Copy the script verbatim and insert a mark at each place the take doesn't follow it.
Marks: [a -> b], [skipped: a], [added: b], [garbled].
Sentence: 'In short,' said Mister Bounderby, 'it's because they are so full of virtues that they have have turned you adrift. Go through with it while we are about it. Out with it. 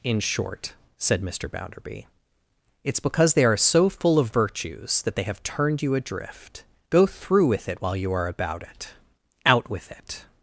'In short,' said Mister Bounderby, 'it's because they are so full of virtues that they have [skipped: have] turned you adrift. Go through with it while [we -> you] are about it. Out with it.